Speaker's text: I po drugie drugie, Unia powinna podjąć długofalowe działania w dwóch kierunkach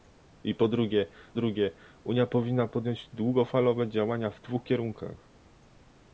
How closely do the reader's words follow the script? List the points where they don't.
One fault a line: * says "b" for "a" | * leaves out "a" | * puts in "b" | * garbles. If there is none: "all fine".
all fine